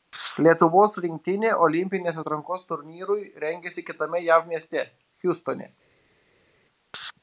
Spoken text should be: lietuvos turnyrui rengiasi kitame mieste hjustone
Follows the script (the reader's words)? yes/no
no